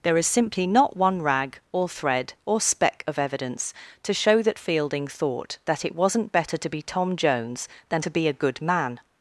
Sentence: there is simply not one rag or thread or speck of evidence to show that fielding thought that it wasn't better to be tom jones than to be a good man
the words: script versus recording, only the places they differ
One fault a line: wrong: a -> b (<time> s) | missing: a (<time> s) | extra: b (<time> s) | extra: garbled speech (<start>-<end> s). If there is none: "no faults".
no faults